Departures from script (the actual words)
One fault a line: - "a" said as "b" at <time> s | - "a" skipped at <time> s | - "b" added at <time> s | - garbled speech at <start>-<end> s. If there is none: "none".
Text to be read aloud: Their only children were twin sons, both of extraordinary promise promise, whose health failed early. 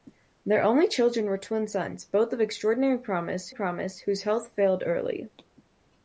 none